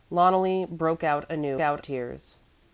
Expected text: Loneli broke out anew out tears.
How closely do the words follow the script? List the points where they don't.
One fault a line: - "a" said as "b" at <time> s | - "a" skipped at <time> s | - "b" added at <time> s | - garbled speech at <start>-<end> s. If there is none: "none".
none